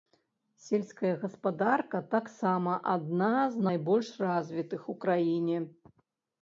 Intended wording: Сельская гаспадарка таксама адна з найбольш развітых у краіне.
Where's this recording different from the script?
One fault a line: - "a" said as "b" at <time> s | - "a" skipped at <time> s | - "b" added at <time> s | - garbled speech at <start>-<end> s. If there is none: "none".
none